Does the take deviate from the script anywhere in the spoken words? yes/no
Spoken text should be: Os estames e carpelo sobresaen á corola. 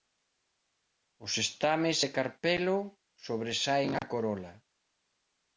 no